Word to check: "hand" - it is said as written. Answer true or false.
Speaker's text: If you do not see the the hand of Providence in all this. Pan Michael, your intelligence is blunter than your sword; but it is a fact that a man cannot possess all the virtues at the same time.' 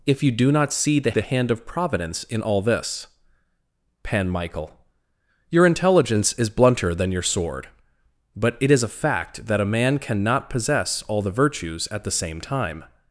true